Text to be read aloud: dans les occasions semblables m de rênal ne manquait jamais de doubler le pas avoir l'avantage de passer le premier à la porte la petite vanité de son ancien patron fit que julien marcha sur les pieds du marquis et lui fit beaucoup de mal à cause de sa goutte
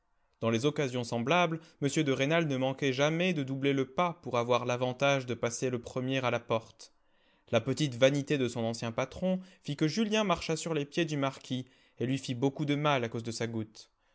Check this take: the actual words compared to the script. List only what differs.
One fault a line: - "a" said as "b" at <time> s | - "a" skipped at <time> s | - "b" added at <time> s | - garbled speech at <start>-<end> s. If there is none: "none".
- "pour" added at 4.2 s